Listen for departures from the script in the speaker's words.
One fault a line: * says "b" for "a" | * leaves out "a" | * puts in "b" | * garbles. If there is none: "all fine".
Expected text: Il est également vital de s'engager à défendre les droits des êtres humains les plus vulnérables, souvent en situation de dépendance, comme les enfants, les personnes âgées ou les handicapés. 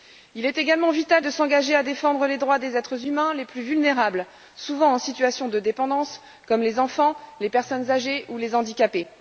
all fine